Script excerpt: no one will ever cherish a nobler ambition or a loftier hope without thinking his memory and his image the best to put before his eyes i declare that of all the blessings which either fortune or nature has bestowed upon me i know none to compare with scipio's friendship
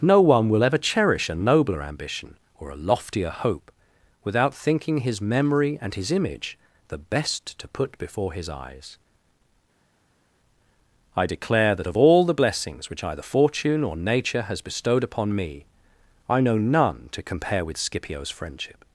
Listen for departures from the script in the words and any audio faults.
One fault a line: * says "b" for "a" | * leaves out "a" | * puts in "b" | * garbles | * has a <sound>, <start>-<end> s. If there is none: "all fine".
all fine